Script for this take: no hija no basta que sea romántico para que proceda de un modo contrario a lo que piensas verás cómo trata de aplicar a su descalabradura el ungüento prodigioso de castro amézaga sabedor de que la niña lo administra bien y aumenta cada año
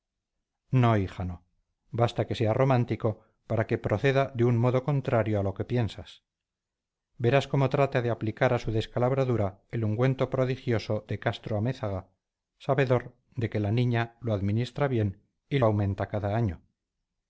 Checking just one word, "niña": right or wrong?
right